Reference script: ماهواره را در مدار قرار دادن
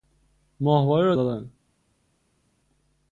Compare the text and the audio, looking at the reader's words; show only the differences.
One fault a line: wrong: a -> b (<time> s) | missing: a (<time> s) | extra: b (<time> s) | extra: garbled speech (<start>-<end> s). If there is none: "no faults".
missing: در مدار قرار (1.1 s)